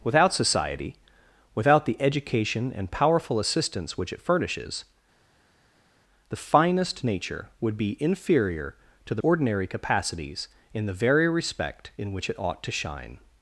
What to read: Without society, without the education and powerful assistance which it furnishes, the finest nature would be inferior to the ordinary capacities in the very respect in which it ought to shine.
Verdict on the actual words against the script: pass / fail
pass